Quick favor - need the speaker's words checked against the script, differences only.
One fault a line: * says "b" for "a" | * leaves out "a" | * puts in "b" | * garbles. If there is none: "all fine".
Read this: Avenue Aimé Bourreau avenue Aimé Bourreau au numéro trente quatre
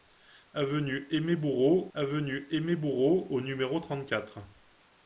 all fine